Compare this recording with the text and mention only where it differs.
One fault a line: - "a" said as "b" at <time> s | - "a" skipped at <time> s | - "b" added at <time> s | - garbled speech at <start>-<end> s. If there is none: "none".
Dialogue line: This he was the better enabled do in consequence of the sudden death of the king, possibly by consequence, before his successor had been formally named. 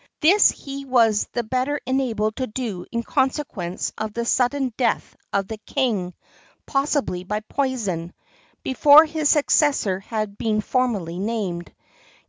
- "to" added at 2.4 s
- "consequence" said as "poison" at 7.4 s